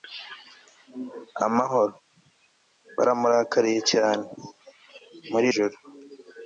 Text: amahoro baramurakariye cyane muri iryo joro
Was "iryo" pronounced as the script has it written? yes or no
no